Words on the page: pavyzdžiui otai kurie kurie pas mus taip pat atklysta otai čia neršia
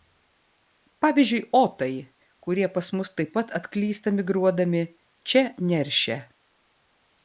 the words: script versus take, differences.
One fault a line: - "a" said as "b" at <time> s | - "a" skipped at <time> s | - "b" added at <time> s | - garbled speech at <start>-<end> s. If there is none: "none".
- "kurie" skipped at 2.7 s
- "otai" said as "migruodami" at 4.2 s